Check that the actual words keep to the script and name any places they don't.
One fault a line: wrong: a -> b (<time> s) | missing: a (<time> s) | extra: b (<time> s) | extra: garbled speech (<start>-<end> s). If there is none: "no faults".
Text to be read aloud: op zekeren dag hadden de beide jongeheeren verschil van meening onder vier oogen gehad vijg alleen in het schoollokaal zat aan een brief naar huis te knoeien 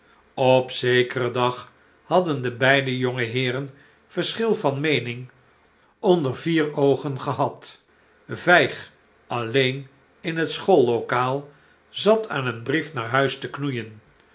no faults